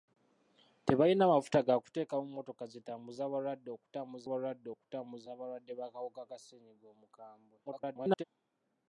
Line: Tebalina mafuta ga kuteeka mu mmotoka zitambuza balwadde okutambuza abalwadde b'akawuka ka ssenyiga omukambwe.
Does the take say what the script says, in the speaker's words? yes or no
no